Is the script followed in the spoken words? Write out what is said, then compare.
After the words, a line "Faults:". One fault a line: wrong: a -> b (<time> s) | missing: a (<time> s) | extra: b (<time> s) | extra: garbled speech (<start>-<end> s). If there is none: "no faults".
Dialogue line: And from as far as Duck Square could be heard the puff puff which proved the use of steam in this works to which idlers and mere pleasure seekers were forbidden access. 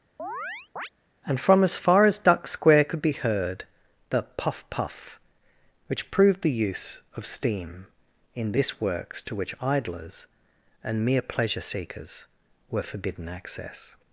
And from as far as Duck Square could be heard the puff puff which proved the use of steam in this works to which idlers and mere pleasure seekers were forbidden access.
Faults:
no faults